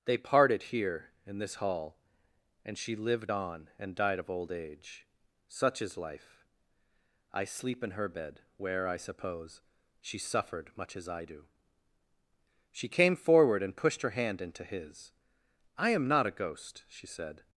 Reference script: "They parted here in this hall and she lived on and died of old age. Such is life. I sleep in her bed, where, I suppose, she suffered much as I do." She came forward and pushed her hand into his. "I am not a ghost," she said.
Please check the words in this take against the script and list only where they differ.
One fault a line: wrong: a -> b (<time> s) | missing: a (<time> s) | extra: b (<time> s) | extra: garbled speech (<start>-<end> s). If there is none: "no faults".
no faults